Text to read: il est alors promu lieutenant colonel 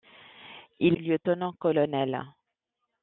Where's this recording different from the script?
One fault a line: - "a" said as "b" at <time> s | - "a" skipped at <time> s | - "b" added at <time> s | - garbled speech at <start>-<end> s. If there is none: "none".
- "est alors promu" skipped at 1.0 s